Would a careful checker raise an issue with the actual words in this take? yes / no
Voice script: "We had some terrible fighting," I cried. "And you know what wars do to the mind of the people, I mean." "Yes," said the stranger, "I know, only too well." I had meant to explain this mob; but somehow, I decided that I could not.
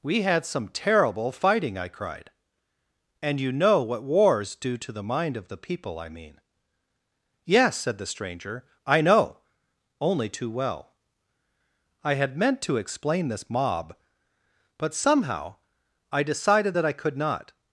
no